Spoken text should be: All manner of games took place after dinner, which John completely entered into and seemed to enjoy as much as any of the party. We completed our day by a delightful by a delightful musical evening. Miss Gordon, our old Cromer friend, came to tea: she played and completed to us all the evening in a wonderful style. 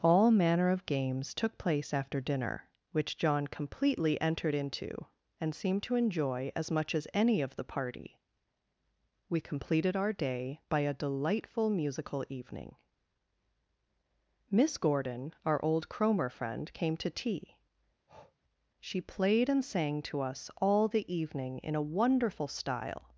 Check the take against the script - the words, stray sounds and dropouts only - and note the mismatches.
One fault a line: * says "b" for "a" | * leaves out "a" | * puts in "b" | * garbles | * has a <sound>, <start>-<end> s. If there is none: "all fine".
* leaves out "by a delightful"
* has a breath, 18.1-18.4 s
* says "sang" for "completed"